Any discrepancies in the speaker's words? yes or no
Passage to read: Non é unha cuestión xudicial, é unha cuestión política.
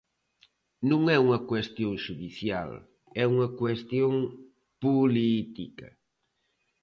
no